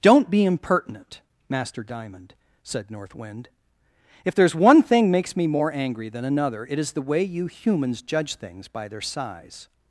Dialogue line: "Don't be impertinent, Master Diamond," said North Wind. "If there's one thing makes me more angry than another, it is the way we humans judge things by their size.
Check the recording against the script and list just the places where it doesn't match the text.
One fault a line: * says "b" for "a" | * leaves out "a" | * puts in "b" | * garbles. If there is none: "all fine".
* says "you" for "we"